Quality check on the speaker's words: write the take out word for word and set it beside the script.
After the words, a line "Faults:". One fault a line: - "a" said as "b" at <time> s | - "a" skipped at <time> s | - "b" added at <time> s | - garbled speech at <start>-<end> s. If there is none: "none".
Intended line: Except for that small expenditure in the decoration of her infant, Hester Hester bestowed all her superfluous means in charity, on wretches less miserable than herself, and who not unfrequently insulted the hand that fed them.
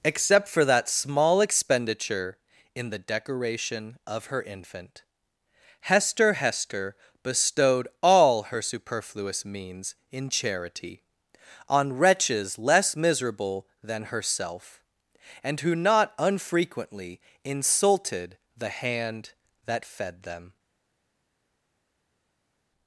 Except for that small expenditure in the decoration of her infant, Hester Hester bestowed all her superfluous means in charity, on wretches less miserable than herself, and who not unfrequently insulted the hand that fed them.
Faults:
none